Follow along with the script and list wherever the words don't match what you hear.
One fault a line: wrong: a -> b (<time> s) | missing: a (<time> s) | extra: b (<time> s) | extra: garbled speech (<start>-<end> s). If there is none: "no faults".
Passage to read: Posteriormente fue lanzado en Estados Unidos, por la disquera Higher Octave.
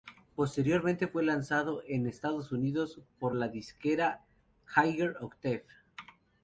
no faults